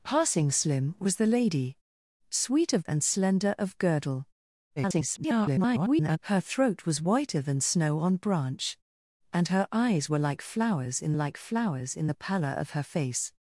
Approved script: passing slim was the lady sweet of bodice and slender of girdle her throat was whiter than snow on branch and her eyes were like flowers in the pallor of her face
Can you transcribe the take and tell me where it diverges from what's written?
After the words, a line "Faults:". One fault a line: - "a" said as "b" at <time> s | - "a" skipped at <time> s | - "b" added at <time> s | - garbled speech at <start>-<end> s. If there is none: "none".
passing slim was the lady sweet of and slender of girdle [garbled] her throat was whiter than snow on branch and her eyes were like flowers in like flowers in the pallor of her face
Faults:
- "bodice" skipped at 2.9 s
- garbled speech at 4.8-6.2 s
- "like flowers in" added at 11.1 s